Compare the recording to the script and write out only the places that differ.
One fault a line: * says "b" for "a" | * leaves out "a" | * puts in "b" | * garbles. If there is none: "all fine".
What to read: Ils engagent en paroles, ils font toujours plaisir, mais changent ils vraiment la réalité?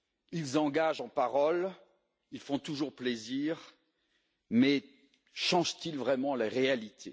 all fine